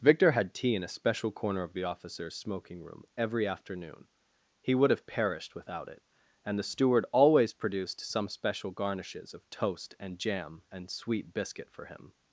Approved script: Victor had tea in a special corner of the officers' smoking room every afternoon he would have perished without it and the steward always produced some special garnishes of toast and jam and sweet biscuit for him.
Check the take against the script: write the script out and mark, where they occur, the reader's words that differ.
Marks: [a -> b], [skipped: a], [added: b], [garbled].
Victor had tea in a special corner of the officers' smoking room every afternoon he would have perished without it and the steward always produced some special garnishes of toast and jam and sweet biscuit for him.